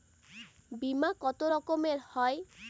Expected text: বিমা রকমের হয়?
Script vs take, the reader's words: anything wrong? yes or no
yes